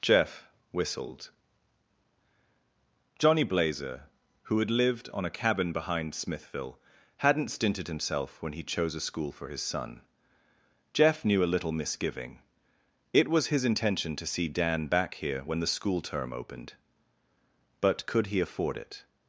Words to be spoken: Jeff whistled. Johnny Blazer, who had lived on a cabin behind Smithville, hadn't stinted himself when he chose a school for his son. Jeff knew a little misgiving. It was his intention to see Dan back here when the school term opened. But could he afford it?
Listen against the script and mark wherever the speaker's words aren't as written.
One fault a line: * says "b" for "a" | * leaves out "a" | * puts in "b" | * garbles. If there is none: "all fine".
all fine